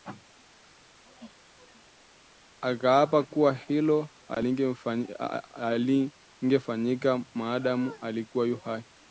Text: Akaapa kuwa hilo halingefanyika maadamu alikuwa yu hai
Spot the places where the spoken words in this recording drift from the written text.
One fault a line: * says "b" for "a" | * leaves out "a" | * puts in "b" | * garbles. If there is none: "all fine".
all fine